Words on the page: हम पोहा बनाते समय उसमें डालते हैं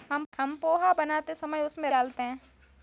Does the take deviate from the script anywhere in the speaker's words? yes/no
no